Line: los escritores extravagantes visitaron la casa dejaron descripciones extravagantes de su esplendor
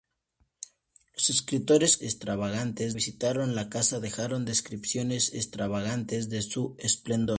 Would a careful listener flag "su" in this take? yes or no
no